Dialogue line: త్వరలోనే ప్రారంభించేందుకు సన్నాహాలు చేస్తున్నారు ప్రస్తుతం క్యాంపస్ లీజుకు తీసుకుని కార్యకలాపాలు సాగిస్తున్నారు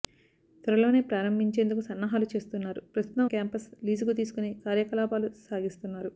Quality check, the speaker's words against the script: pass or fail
pass